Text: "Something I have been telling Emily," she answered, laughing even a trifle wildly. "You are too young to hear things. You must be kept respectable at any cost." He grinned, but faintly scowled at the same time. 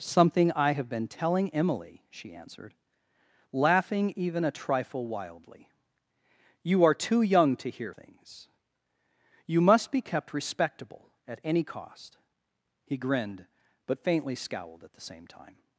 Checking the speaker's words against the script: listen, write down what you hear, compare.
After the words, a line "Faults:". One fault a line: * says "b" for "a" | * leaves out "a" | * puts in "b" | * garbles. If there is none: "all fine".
"Something I have been telling Emily," she answered, laughing even a trifle wildly. "You are too young to hear things. You must be kept respectable at any cost." He grinned, but faintly scowled at the same time.
Faults:
all fine